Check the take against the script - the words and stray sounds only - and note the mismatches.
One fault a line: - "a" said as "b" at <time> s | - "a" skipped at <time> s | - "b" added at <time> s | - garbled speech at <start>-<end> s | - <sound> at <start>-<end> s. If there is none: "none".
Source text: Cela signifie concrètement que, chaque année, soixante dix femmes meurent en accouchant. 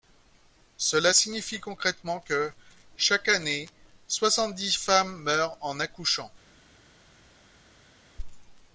none